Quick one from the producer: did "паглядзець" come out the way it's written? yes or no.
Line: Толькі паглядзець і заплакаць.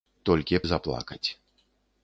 no